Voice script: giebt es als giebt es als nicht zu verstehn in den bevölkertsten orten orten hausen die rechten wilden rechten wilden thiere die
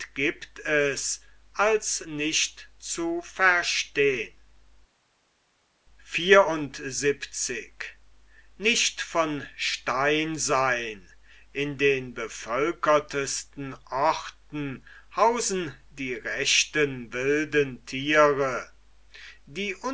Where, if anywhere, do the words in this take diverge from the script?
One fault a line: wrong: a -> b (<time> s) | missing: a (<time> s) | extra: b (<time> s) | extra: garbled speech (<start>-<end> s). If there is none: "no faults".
missing: giebt es als (2.1 s)
missing: orten (14.8 s)
missing: rechten wilden (17.8 s)